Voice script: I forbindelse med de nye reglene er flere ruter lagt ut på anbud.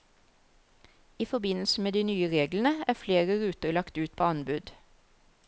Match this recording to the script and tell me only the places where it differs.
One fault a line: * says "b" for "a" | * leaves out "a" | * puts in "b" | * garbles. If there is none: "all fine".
all fine